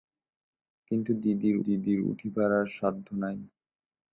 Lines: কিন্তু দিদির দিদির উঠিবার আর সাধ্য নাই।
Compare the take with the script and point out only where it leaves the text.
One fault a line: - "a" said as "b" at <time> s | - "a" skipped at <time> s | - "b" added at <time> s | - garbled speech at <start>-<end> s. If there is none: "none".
none